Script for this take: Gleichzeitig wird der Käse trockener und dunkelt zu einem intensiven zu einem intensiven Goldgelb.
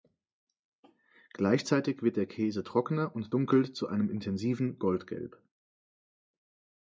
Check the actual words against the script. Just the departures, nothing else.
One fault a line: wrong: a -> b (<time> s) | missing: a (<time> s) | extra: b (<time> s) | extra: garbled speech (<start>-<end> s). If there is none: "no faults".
missing: zu einem intensiven (4.8 s)